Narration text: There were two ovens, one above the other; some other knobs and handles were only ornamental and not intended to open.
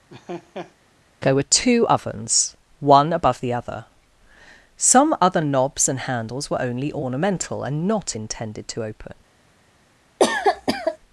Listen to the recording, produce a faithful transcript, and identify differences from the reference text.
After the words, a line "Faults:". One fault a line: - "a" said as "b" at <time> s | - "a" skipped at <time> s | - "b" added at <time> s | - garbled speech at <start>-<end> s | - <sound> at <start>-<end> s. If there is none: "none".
There were two ovens, one above the other; some other knobs and handles were only ornamental and not intended to open.
Faults:
- laugh at 0.1-0.7 s
- cough at 10.2-11.0 s